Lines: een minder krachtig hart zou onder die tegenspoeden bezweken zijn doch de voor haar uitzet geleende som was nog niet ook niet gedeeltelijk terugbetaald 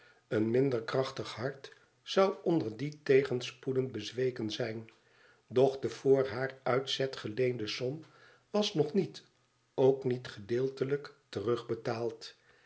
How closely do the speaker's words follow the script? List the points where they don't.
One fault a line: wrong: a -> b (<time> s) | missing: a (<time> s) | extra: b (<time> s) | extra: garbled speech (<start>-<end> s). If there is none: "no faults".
no faults